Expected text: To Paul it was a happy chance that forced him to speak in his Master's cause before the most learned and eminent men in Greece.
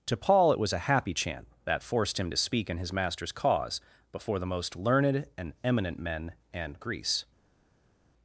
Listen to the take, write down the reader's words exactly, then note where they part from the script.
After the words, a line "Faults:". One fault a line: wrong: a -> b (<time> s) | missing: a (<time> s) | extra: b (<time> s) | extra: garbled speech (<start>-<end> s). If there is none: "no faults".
To Paul it was a happy chant that forced him to speak in his Master's cause before the most learned and eminent men and Greece.
Faults:
wrong: chance -> chant (1.1 s)
wrong: in -> and (6.5 s)